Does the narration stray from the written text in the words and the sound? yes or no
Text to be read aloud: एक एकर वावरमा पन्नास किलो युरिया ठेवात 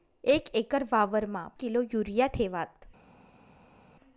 yes